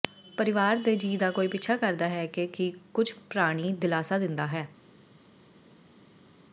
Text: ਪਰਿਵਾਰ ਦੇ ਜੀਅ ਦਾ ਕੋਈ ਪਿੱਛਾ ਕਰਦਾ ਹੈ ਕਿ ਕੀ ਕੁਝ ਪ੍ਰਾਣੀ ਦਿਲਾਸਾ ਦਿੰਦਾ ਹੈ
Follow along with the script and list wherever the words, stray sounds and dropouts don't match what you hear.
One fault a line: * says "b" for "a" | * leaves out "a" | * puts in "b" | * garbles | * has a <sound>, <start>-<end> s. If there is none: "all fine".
all fine